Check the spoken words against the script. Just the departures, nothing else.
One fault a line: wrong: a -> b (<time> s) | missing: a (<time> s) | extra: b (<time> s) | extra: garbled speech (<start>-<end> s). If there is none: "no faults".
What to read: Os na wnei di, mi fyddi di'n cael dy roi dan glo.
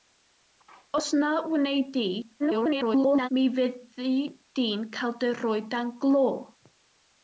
extra: garbled speech (2.4-3.3 s)